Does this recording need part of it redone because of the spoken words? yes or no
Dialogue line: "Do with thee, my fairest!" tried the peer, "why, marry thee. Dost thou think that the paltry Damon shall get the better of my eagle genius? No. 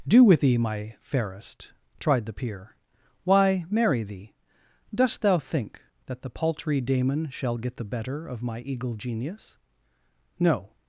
no